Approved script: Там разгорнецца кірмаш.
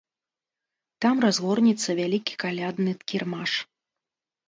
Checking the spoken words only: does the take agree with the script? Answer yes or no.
no